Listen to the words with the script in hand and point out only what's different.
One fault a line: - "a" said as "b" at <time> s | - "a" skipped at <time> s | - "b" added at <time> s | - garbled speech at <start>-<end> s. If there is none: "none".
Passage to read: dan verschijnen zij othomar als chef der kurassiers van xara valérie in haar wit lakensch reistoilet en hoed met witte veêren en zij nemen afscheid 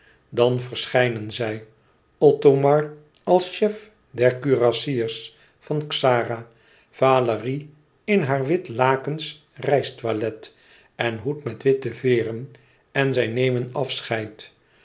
none